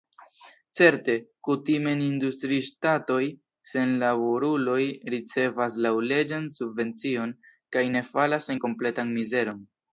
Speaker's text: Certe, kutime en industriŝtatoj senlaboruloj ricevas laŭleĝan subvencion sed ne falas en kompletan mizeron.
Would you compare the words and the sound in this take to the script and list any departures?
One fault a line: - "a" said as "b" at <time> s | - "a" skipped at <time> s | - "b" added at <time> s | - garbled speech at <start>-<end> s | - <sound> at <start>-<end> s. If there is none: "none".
- "sed" said as "kaj" at 7.8 s